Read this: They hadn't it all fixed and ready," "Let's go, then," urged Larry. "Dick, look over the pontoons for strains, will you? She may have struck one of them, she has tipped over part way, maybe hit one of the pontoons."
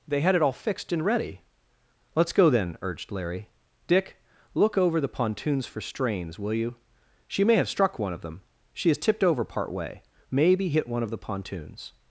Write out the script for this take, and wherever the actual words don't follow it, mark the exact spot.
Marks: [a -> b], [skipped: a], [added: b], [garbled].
They [hadn't -> had] it all fixed and ready," "Let's go, then," urged Larry. "Dick, look over the pontoons for strains, will you? She may have struck one of them, she has tipped over part way, maybe hit one of the pontoons."